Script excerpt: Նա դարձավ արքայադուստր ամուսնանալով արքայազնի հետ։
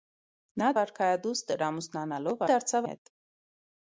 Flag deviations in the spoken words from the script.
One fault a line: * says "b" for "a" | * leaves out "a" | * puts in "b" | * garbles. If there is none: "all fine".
* leaves out "դարձավ"
* says "դարձավ" for "արքայազնի"